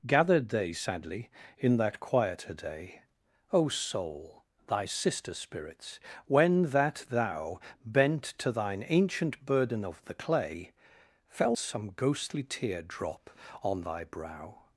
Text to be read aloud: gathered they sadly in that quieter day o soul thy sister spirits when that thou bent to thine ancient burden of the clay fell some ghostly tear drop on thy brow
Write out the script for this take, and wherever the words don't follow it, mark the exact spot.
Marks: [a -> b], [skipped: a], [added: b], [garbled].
gathered they sadly in that quieter day o soul thy sister spirits when that thou bent to thine ancient burden of the clay fell some ghostly tear drop on thy brow